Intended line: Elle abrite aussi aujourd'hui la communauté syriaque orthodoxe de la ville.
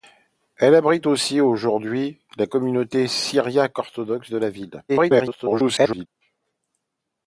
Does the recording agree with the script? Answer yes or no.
no